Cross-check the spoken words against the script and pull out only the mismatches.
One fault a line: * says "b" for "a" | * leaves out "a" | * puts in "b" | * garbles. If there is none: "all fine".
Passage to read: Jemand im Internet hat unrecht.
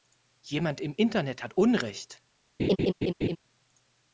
all fine